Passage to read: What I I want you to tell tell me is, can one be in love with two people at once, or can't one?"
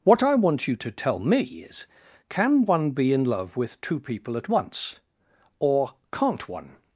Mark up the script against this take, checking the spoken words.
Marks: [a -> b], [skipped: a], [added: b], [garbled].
What I [skipped: I] want you to tell [skipped: tell] me is, can one be in love with two people at once, or can't one?"